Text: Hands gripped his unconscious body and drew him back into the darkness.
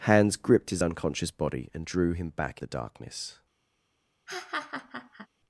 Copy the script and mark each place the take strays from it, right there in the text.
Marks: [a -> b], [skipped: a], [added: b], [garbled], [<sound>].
Hands gripped his unconscious body and drew him back [skipped: into] the darkness. [laugh]